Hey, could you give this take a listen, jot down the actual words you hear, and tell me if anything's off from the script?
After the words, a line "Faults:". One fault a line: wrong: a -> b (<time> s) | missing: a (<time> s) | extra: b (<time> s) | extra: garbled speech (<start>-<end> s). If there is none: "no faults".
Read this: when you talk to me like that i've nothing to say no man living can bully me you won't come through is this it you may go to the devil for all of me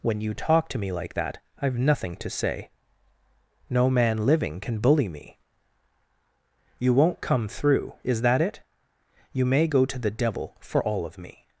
when you talk to me like that i've nothing to say no man living can bully me you won't come through is that it you may go to the devil for all of me
Faults:
wrong: this -> that (8.2 s)